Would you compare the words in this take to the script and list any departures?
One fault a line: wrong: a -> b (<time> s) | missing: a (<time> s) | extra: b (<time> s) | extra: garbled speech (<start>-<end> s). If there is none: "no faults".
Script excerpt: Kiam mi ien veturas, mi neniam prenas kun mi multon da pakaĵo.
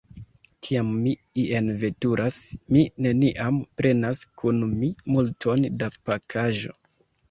no faults